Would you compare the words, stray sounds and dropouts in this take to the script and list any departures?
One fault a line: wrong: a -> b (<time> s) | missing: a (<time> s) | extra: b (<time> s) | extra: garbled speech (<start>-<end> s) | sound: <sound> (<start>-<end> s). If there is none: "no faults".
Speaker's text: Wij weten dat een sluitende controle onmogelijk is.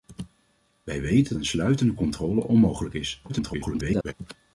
missing: dat (1.4 s)
extra: garbled speech (3.3-4.1 s)